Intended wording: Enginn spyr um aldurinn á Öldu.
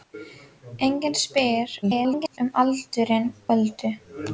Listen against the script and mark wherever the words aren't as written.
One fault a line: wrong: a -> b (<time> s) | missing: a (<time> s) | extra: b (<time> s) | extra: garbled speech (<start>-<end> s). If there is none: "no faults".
extra: garbled speech (1.8-2.4 s)
missing: á (3.3 s)